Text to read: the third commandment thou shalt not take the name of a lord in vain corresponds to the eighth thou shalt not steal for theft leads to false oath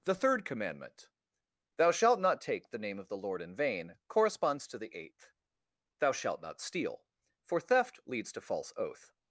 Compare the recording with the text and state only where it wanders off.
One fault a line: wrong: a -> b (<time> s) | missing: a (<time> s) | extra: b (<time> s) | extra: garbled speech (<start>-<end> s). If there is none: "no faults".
wrong: a -> the (3.1 s)